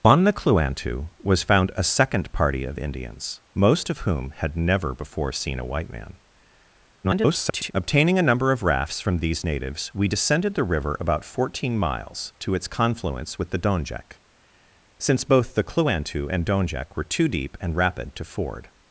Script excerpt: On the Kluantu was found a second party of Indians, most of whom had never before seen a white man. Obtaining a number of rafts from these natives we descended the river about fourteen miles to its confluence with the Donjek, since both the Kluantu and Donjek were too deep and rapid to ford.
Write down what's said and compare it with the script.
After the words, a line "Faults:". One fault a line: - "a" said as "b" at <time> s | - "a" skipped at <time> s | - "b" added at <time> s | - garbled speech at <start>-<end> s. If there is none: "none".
On the Kluantu was found a second party of Indians, most of whom had never before seen a white man. [garbled] Obtaining a number of rafts from these natives we descended the river about fourteen miles to its confluence with the Donjek, since both the Kluantu and Donjek were too deep and rapid to ford.
Faults:
- garbled speech at 7.0-7.7 s